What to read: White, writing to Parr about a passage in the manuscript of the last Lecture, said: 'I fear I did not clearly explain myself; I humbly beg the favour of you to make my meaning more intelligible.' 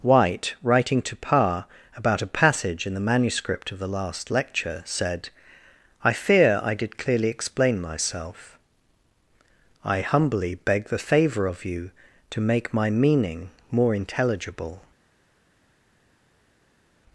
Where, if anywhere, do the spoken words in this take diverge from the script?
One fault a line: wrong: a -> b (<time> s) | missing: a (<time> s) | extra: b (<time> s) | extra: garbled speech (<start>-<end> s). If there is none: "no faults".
missing: not (7.0 s)